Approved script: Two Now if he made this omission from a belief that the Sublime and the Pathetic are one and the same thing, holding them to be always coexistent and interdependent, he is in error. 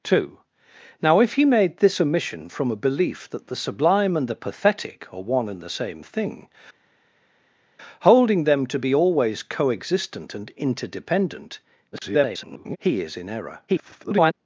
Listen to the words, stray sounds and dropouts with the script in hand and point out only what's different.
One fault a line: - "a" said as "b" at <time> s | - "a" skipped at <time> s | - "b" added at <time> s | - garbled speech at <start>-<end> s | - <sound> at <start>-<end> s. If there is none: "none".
- garbled speech at 11.9-12.8 s
- garbled speech at 13.7-14.3 s